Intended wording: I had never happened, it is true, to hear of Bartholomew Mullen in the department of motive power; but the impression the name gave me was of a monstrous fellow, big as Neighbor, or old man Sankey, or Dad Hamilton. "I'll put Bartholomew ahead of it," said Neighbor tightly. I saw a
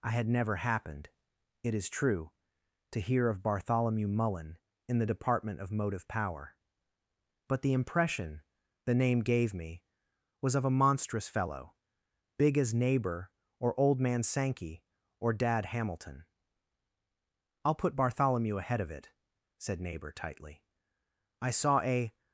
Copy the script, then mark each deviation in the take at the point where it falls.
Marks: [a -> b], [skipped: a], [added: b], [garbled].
I had never happened, it is true, to hear of Bartholomew Mullen in the department of motive power; but the impression the name gave me was of a monstrous fellow, big as Neighbor, or old man Sankey, or Dad Hamilton. "I'll put Bartholomew ahead of it," said Neighbor tightly. I saw a